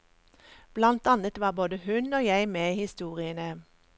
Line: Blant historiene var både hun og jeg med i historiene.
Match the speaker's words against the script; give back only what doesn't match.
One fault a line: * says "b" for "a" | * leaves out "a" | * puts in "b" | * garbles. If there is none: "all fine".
* says "annet" for "historiene"